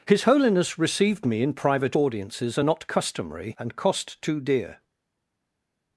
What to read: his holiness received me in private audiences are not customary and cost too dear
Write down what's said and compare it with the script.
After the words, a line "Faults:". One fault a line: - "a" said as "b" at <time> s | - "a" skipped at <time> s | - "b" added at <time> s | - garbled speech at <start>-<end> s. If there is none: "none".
his holiness received me in private audiences are not customary and cost too dear
Faults:
none